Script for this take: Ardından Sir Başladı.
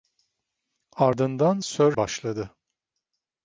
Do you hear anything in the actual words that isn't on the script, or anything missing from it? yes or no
no